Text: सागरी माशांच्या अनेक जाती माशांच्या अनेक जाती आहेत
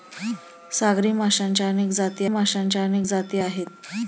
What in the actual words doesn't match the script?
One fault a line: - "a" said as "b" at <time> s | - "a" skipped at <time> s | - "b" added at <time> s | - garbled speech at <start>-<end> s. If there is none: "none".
none